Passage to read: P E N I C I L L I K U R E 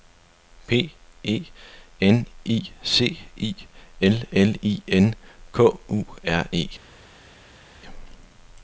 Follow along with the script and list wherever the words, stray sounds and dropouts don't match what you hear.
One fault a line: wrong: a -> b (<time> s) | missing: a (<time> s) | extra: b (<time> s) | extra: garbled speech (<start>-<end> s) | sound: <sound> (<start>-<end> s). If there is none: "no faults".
extra: N (4.9 s)